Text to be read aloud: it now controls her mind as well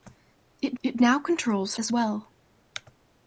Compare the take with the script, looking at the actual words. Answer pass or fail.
fail